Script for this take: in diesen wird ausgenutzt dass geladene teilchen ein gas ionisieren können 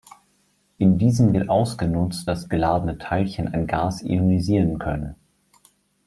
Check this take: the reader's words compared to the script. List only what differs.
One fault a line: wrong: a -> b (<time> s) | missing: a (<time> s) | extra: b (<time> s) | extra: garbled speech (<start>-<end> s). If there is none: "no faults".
no faults